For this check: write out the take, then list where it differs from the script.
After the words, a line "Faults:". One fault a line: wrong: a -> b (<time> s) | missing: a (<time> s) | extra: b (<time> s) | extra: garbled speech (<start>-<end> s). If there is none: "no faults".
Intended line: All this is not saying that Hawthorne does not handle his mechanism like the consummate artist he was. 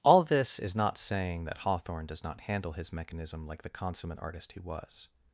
All this is not saying that Hawthorne does not handle his mechanism like the consummate artist he was.
Faults:
no faults